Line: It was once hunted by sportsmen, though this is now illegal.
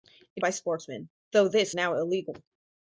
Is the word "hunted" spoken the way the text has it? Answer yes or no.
no